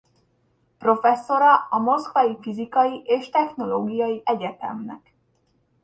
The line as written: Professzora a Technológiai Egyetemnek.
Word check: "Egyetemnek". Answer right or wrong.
right